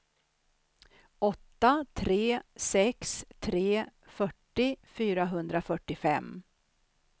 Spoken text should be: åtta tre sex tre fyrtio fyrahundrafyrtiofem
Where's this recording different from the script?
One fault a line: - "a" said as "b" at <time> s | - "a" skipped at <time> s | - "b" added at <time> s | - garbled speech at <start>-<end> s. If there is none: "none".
none